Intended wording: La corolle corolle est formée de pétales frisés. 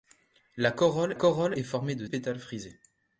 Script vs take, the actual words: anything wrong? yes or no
no